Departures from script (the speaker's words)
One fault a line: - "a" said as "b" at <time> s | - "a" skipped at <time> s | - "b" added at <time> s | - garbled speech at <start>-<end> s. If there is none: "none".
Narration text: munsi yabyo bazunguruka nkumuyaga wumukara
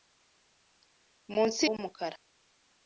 - "yabyo bazunguruka nkumuyaga" skipped at 1.6 s